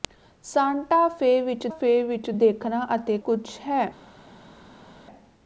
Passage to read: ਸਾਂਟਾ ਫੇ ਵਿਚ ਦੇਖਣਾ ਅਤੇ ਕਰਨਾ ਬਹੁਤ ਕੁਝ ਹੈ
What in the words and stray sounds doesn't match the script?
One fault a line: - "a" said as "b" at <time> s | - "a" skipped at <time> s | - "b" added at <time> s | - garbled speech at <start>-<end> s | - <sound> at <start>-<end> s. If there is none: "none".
- "ਫੇ ਵਿਚ" added at 1.7 s
- "ਕਰਨਾ ਬਹੁਤ" skipped at 3.2 s